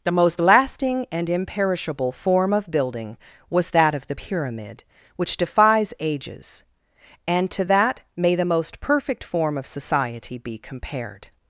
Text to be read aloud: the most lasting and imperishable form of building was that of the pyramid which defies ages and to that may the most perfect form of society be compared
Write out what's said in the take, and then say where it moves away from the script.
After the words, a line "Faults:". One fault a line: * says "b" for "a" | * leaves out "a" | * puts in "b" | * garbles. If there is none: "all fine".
the most lasting and imperishable form of building was that of the pyramid which defies ages and to that may the most perfect form of society be compared
Faults:
all fine